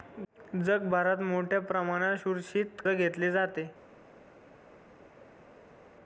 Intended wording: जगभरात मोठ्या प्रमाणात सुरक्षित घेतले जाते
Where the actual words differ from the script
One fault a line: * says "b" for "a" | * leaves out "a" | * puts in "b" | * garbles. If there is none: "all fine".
all fine